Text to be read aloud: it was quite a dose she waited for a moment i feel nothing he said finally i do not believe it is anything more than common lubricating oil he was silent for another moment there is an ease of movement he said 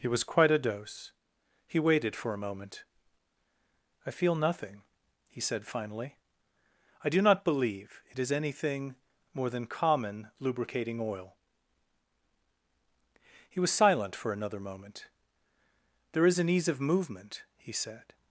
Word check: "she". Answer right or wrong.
wrong